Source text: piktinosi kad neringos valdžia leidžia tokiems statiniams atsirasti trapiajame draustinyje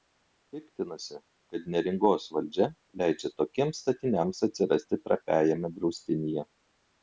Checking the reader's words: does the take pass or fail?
pass